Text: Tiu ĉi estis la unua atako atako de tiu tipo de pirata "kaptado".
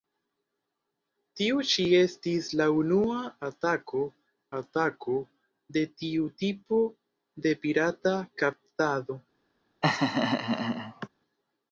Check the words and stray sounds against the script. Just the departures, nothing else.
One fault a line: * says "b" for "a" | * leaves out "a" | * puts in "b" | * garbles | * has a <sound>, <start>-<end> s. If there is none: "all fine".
* has a laugh, 9.8-11.1 s